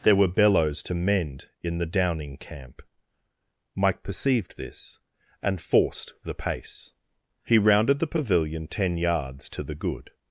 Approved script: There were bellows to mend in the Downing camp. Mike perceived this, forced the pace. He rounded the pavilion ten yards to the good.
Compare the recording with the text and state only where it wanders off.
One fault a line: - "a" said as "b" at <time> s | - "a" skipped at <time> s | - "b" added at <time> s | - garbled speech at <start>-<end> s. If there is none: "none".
- "and" added at 5.4 s